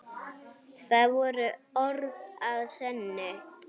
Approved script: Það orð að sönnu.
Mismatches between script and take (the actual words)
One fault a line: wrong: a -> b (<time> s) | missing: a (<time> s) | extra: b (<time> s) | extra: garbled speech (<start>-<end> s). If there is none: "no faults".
extra: voru (1.2 s)